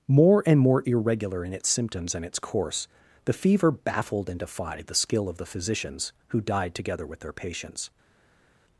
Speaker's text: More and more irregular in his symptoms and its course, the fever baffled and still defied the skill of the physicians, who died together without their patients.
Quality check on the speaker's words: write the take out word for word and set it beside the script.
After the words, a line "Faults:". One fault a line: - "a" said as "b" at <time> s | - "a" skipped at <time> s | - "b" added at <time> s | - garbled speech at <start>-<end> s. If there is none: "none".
More and more irregular in its symptoms and its course, the fever baffled and defied the skill of the physicians, who died together with their patients.
Faults:
- "his" said as "its" at 1.5 s
- "still" skipped at 4.4 s
- "without" said as "with" at 7.0 s